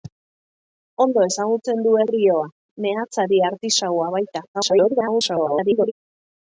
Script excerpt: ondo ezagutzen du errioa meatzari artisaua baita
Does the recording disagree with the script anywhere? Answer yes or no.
yes